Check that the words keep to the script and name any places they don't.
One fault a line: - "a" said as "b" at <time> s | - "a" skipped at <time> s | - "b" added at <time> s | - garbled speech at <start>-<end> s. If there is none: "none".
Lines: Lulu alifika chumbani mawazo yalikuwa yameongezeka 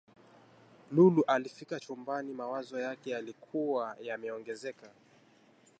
- "yake" added at 2.8 s